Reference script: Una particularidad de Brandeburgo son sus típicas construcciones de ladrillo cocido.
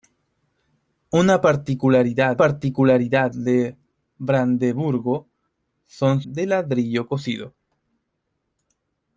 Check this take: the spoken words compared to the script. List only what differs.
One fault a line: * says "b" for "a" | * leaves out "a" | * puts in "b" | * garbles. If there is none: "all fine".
* puts in "particularidad"
* leaves out "sus típicas construcciones"